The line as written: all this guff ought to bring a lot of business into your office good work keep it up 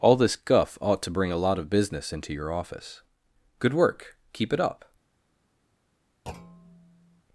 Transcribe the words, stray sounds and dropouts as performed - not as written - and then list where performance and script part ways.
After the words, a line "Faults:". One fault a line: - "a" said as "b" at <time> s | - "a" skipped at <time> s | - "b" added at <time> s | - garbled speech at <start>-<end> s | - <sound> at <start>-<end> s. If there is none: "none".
all this guff ought to bring a lot of business into your office good work keep it up
Faults:
- thud at 6.3-7.2 s